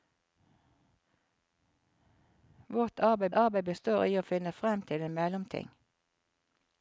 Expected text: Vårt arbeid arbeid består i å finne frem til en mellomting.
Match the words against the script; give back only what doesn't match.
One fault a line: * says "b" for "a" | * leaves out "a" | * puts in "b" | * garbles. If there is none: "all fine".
all fine